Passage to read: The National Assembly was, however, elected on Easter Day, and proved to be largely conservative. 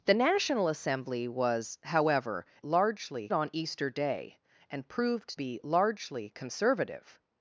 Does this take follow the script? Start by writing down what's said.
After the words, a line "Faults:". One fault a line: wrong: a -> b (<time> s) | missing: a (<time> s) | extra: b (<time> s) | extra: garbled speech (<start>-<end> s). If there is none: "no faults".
The National Assembly was, however, largely on Easter Day, and proved be largely conservative.
Faults:
wrong: elected -> largely (2.6 s)
missing: to (5.4 s)